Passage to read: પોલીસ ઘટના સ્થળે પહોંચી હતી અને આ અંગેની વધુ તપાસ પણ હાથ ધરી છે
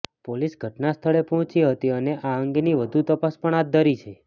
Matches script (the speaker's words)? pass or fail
pass